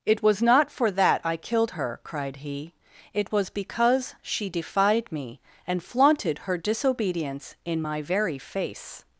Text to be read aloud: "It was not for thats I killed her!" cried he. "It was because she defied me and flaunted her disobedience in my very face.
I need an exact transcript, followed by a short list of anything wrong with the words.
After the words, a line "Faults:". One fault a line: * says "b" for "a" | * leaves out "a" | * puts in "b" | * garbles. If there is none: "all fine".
"It was not for that I killed her!" cried he. "It was because she defied me and flaunted her disobedience in my very face.
Faults:
* says "that" for "thats"